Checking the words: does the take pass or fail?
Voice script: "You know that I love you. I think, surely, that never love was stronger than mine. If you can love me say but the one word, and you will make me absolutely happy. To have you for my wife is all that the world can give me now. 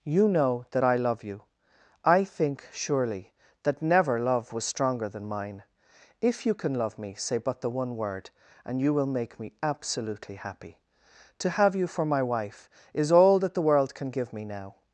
pass